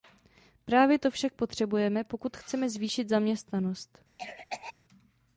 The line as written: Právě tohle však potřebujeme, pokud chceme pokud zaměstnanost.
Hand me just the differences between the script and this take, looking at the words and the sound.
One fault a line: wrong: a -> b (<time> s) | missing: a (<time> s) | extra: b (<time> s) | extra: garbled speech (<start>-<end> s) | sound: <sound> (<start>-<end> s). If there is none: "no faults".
wrong: tohle -> to (1.0 s)
wrong: pokud -> zvýšit (2.7 s)
sound: cough (4.2-4.7 s)